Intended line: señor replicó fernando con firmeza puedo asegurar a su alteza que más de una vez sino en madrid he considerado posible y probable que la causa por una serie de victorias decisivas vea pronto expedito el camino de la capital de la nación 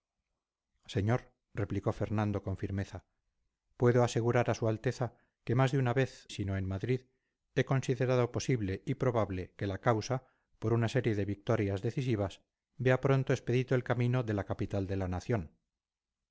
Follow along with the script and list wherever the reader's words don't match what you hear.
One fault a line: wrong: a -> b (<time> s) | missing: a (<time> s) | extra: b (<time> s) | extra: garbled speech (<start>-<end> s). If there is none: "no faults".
no faults